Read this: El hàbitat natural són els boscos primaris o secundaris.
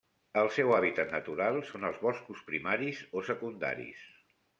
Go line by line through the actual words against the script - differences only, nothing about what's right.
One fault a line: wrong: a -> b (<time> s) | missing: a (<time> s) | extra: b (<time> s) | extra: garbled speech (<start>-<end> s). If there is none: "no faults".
extra: seu (0.5 s)